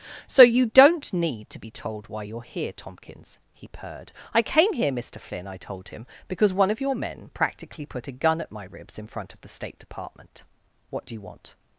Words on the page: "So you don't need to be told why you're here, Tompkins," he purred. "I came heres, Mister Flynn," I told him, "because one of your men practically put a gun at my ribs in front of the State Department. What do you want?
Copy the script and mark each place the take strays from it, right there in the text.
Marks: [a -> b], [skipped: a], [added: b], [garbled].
"So you don't need to be told why you're here, Tompkins," he purred. "I came [heres, -> here] Mister Flynn," I told him, "because one of your men practically put a gun at my ribs in front of the State Department. What do you want?